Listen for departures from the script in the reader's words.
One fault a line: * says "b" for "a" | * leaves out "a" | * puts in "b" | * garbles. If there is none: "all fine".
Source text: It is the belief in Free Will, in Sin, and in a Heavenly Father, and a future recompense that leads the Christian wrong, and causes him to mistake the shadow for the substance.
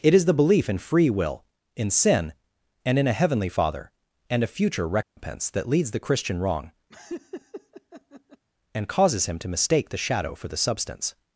all fine